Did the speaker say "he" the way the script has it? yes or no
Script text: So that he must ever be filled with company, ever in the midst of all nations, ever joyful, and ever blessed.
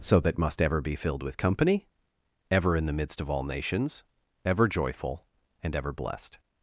no